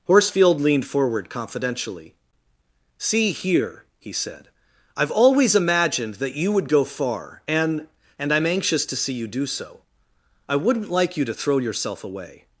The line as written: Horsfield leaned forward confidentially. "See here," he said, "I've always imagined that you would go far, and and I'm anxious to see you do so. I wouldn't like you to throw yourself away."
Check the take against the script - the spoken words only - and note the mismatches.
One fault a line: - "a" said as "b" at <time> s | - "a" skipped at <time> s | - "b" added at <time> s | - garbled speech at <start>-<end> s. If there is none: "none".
none